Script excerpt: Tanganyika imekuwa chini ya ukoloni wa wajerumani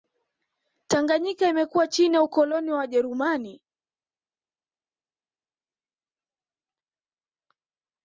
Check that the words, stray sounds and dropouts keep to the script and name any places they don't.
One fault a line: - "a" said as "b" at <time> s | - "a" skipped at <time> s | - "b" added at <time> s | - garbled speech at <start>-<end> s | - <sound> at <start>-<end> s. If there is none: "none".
none